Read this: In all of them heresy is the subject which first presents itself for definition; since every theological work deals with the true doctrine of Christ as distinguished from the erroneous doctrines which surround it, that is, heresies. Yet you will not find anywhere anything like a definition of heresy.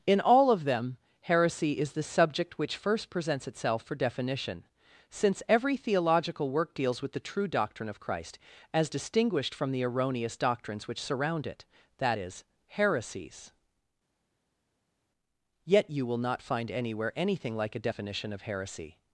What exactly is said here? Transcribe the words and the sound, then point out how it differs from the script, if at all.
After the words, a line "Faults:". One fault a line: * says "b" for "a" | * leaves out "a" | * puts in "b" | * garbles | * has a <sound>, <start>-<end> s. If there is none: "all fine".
In all of them heresy is the subject which first presents itself for definition; since every theological work deals with the true doctrine of Christ as distinguished from the erroneous doctrines which surround it, that is, heresies. Yet you will not find anywhere anything like a definition of heresy.
Faults:
all fine